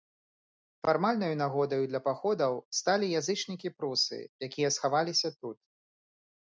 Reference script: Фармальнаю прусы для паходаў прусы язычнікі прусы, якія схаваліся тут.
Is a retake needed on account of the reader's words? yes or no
yes